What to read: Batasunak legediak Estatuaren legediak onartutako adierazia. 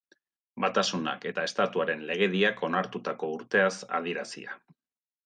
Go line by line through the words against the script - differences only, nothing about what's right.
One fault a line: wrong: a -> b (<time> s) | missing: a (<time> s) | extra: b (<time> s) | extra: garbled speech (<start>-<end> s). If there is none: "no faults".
wrong: legediak -> eta (1.3 s)
extra: urteaz (3.4 s)